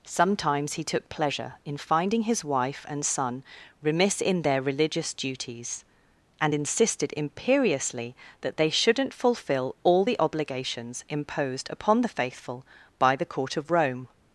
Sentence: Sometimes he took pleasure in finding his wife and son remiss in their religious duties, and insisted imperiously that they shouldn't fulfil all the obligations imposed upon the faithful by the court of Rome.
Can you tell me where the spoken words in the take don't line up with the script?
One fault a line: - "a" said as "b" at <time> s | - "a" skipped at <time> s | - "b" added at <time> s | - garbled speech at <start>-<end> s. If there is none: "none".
none